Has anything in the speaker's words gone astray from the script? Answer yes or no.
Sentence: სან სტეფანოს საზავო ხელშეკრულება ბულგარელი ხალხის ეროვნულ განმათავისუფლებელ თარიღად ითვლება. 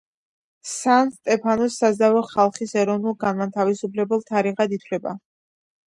yes